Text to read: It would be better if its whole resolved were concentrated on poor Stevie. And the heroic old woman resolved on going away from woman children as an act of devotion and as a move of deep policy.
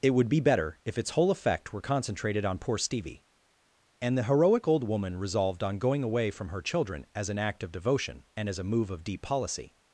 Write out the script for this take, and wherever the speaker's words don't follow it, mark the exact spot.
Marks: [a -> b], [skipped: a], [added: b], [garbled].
It would be better if its whole [resolved -> effect] were concentrated on poor Stevie. And the heroic old woman resolved on going away from [woman -> her] children as an act of devotion and as a move of deep policy.